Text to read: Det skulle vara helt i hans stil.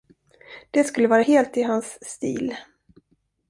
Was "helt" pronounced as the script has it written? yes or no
yes